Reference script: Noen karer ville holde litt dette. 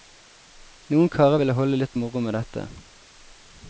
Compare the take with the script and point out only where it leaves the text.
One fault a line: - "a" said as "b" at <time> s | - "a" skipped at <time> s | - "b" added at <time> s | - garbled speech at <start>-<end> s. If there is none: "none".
- "moro med" added at 2.0 s